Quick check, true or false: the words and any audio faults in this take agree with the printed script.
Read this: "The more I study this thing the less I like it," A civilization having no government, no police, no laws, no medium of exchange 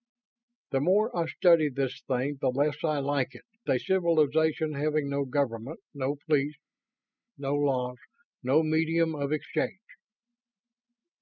true